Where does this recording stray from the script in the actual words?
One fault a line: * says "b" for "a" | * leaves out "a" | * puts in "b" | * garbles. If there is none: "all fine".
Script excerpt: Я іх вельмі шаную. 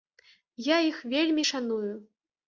all fine